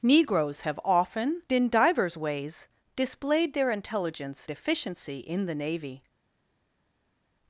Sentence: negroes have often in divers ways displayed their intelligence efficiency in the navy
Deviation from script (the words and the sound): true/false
false